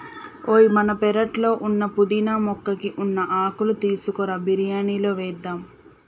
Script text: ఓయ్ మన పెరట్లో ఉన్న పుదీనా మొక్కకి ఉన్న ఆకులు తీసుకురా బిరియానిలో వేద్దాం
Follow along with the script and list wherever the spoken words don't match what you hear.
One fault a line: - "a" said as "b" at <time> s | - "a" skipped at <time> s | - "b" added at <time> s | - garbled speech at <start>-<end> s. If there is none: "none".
none